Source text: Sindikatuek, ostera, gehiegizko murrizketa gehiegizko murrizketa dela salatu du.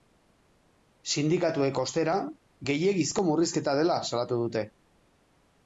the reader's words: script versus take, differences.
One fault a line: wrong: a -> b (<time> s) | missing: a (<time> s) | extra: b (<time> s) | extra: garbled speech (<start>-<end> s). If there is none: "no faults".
missing: gehiegizko murrizketa (3.8 s)
wrong: du -> dute (4.5 s)